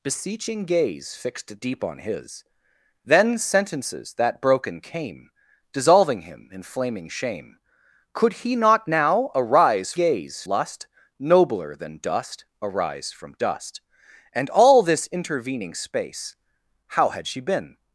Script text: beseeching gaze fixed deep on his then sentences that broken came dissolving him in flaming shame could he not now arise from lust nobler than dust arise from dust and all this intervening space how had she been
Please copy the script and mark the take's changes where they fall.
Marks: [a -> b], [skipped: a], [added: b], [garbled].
beseeching gaze fixed deep on his then sentences that broken came dissolving him in flaming shame could he not now arise [from -> gaze] lust nobler than dust arise from dust and all this intervening space how had she been